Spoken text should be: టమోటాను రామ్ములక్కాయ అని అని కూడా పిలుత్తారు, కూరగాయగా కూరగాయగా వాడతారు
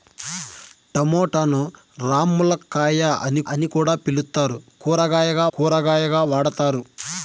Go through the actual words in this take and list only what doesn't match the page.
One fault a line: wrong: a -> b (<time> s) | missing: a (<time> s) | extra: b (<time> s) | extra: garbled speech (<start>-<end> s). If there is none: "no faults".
no faults